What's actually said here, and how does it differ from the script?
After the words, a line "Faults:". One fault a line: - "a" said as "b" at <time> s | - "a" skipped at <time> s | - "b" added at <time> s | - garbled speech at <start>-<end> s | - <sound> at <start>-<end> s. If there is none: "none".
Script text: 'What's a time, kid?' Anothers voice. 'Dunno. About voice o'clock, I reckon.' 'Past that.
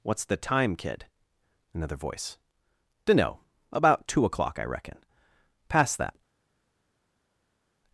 'What's the time, kid?' Another voice. 'Dunno. About two o'clock, I reckon.' 'Past that.
Faults:
- "a" said as "the" at 0.2 s
- "Anothers" said as "Another" at 1.8 s
- "voice" said as "two" at 4.1 s